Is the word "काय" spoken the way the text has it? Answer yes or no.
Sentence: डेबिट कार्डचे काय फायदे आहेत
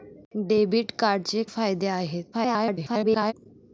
no